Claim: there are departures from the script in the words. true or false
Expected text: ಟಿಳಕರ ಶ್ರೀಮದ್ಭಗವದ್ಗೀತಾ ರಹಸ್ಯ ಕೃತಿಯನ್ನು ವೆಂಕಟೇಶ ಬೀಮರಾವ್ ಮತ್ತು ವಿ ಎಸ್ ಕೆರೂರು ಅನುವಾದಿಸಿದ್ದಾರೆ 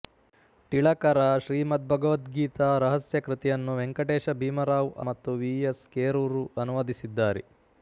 false